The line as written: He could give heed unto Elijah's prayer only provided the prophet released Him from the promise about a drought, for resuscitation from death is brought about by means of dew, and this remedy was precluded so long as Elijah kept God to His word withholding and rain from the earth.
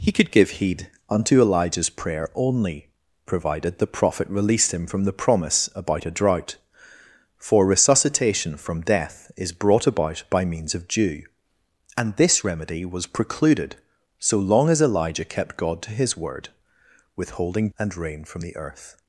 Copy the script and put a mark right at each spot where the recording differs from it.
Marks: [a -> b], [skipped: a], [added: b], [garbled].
He could give heed unto Elijah's prayer only provided the prophet released Him from the promise about a drought, for resuscitation from death is brought about by means of dew, and this remedy was precluded so long as Elijah kept God to His word withholding and rain from the earth.